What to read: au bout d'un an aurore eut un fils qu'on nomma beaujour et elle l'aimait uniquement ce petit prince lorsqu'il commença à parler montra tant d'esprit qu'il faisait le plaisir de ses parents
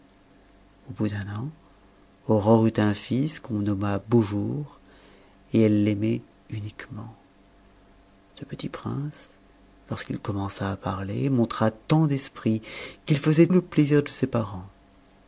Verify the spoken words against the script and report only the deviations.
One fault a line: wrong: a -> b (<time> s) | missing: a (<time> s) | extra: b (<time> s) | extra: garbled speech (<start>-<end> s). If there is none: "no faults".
no faults